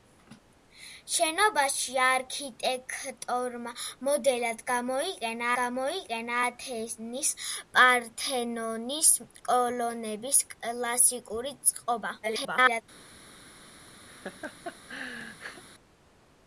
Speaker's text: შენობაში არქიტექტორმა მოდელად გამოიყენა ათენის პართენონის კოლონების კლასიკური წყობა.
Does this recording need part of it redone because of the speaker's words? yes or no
yes